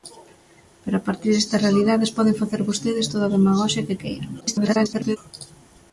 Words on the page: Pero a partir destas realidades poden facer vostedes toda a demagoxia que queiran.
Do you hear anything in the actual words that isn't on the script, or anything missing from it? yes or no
yes